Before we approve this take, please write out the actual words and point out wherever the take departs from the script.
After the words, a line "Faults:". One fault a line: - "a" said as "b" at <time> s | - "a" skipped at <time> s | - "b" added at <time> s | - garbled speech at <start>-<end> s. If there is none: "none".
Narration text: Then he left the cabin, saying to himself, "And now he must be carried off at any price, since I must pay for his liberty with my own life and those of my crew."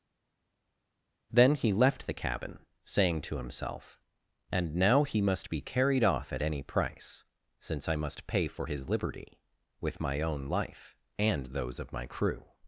Then he left the cabin, saying to himself, "And now he must be carried off at any price, since I must pay for his liberty with my own life and those of my crew."
Faults:
none